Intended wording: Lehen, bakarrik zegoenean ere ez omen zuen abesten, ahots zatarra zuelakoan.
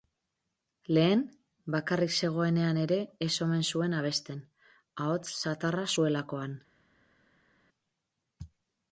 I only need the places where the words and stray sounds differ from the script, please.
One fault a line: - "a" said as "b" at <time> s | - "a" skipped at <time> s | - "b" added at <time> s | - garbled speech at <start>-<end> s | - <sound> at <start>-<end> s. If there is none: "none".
none